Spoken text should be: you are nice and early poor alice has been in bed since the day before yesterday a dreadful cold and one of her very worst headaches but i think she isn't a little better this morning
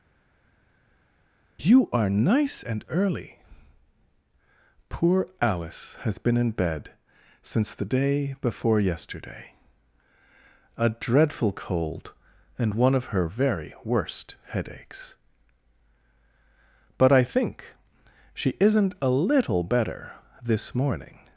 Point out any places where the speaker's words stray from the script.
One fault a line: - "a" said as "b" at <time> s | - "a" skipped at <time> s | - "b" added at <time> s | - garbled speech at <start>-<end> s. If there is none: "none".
none